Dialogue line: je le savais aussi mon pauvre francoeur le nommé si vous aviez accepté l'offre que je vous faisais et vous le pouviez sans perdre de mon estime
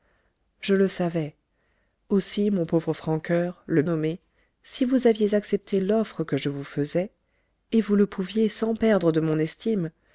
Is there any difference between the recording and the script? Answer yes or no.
no